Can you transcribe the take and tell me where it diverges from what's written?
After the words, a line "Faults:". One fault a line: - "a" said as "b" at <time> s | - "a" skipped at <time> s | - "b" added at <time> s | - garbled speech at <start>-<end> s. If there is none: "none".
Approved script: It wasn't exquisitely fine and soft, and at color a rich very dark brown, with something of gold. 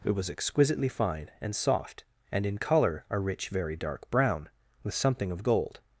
It was exquisitely fine and soft, and in color a rich very dark brown, with something of gold.
Faults:
- "wasn't" said as "was" at 0.1 s
- "at" said as "in" at 2.5 s